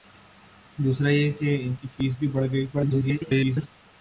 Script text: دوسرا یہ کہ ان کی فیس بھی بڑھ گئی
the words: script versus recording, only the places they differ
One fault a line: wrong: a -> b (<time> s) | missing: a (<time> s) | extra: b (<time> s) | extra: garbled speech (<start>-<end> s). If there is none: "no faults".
extra: garbled speech (2.7-3.7 s)